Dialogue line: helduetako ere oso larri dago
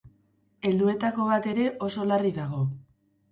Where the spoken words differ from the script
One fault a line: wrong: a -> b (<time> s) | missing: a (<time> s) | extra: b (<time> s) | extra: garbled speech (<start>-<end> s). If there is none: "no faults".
extra: bat (1.3 s)